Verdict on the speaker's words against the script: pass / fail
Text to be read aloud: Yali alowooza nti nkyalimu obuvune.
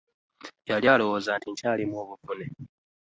pass